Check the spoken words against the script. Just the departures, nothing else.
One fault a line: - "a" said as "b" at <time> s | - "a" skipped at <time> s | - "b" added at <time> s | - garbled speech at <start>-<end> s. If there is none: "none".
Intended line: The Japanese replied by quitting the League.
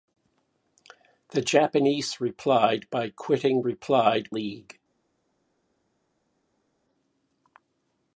- "the" said as "replied" at 3.6 s